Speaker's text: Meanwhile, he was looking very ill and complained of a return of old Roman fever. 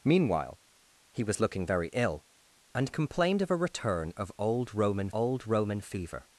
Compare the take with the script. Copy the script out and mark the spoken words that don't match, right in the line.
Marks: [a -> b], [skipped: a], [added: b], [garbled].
Meanwhile, he was looking very ill and complained of a return of old Roman [added: old Roman] fever.